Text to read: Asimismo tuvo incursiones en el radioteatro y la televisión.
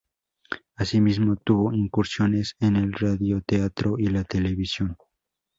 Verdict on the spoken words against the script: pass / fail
pass